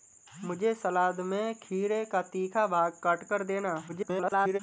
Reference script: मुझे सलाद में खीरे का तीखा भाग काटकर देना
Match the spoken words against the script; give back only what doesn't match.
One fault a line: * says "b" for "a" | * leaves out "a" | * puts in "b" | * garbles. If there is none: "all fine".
* garbles